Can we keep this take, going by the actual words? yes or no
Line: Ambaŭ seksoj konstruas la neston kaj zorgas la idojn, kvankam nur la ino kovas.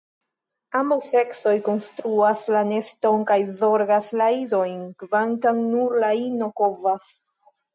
yes